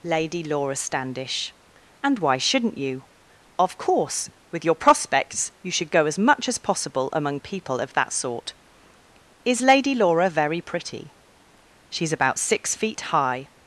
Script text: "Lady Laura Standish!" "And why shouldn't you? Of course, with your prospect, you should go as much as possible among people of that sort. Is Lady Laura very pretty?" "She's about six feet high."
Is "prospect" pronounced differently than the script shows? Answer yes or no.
yes